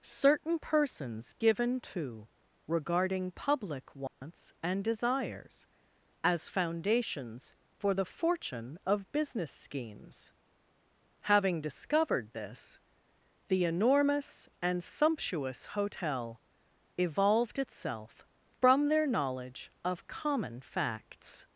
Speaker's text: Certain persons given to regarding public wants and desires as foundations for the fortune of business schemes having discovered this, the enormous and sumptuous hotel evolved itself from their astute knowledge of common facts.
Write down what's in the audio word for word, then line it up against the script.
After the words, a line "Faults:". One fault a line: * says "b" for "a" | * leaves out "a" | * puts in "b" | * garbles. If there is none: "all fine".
Certain persons given to regarding public wants and desires as foundations for the fortune of business schemes having discovered this, the enormous and sumptuous hotel evolved itself from their knowledge of common facts.
Faults:
* leaves out "astute"